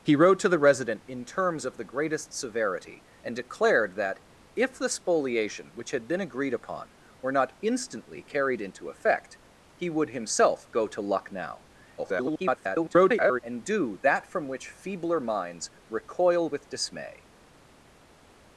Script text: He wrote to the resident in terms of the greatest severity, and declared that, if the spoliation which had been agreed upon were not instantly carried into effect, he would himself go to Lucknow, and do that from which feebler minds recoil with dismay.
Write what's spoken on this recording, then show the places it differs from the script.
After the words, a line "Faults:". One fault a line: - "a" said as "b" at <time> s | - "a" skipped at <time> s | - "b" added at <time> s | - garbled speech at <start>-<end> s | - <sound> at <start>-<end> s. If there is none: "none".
He wrote to the resident in terms of the greatest severity, and declared that, if the spoliation which had been agreed upon were not instantly carried into effect, he would himself go to Lucknow, [garbled] and do that from which feebler minds recoil with dismay.
Faults:
- garbled speech at 12.0-13.4 s